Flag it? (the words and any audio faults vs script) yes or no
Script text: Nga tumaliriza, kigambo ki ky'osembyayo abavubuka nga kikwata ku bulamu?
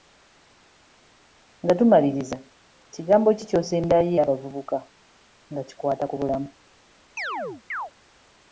yes